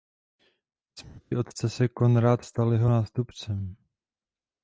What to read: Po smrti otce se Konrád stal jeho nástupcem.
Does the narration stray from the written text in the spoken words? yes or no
no